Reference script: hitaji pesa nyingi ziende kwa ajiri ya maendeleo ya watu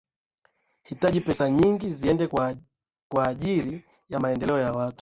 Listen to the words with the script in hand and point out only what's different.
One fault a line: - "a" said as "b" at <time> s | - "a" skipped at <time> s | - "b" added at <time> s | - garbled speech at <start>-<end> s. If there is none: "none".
none